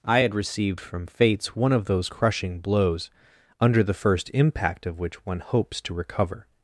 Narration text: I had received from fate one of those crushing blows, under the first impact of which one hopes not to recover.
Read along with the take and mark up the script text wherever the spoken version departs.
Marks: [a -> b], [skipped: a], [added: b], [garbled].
I had received from [fate -> fates] one of those crushing blows, under the first impact of which one hopes [skipped: not] to recover.